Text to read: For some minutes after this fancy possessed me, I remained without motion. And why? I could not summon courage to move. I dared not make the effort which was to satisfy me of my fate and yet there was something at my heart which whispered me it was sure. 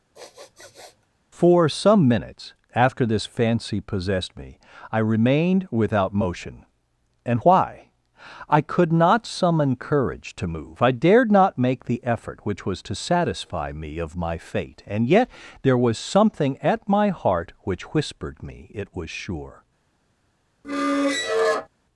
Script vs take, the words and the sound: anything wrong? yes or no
yes